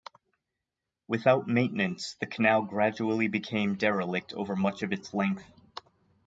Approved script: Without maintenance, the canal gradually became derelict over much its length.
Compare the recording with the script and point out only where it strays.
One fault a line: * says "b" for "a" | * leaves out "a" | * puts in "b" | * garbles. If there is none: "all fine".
* puts in "of"